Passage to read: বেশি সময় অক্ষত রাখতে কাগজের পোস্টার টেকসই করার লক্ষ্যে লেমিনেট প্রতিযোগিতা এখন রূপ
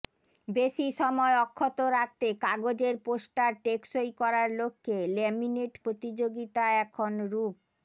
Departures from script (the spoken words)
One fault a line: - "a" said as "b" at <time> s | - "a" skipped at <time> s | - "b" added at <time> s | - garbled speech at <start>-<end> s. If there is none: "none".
none